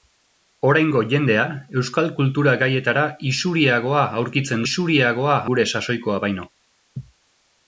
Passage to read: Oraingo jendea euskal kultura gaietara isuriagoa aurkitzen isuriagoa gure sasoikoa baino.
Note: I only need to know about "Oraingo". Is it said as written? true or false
true